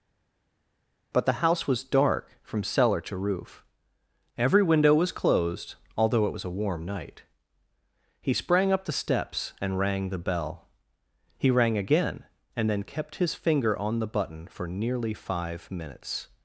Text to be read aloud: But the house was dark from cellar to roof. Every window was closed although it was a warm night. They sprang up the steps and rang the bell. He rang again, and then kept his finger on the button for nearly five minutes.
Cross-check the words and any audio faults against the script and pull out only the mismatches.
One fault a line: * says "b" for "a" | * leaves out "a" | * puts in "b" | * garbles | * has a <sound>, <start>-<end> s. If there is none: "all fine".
* says "He" for "They"